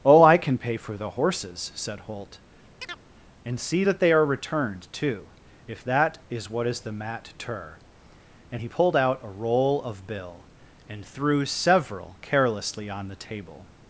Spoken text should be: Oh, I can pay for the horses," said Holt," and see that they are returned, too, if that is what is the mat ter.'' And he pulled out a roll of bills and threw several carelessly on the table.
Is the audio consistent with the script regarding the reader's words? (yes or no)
no